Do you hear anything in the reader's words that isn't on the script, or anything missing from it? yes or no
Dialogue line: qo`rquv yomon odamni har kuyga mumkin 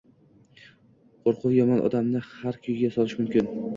yes